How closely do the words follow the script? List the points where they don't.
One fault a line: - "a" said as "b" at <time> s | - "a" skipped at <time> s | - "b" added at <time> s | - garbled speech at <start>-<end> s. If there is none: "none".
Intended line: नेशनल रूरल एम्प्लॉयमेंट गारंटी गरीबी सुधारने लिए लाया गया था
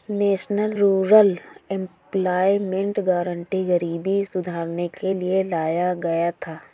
- "के" added at 4.9 s